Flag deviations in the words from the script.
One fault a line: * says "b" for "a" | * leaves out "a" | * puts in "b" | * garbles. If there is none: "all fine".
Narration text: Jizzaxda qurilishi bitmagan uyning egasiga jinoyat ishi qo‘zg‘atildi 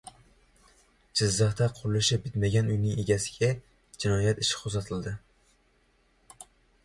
all fine